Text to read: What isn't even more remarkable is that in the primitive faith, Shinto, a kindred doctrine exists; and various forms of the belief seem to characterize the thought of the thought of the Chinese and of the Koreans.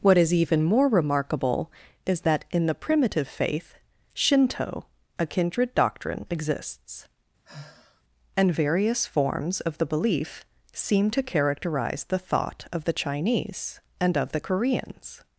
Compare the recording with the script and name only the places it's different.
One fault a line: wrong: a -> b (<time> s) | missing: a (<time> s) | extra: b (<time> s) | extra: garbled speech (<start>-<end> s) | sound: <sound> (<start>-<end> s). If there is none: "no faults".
wrong: isn't -> is (0.2 s)
sound: sigh (7.5-8.0 s)
missing: thought of the (12.9 s)